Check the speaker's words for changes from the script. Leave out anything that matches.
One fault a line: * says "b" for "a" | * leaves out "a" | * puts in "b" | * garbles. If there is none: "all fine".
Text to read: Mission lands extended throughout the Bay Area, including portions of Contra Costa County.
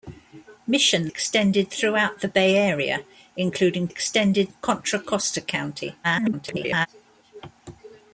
* leaves out "lands"
* says "extended" for "portions"
* garbles